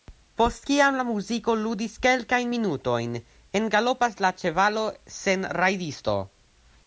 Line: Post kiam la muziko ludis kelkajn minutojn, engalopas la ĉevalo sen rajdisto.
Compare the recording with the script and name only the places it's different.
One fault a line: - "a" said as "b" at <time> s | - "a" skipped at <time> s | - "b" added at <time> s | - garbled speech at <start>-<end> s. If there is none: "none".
none